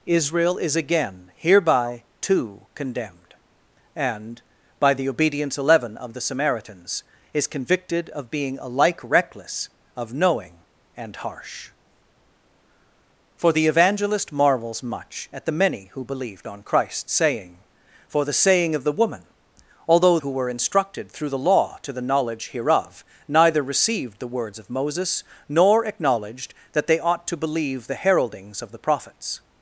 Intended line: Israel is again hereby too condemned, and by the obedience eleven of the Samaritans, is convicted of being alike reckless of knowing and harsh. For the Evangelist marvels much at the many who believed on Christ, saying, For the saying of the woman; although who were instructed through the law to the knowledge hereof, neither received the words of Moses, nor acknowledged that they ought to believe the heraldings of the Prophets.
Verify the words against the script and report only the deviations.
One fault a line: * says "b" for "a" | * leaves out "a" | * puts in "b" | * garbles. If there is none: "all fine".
all fine